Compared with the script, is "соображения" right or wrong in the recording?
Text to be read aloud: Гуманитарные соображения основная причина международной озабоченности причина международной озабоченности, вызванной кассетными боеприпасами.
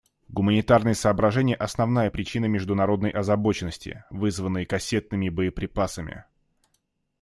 right